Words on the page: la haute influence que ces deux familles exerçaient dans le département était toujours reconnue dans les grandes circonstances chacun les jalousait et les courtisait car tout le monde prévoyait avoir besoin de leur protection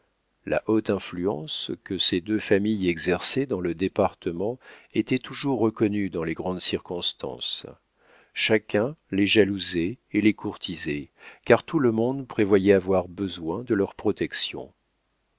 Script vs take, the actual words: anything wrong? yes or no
no